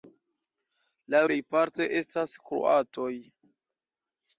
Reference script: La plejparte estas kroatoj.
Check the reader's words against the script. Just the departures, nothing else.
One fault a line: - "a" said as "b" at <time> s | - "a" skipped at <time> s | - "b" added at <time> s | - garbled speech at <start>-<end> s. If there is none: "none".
none